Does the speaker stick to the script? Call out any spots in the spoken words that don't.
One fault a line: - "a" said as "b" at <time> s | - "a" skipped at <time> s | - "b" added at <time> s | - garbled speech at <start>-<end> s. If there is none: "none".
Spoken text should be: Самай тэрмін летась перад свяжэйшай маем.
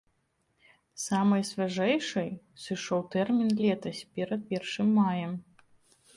- "свяжэйшай сышоў" added at 1.5 s
- "свяжэйшай" said as "першым" at 4.5 s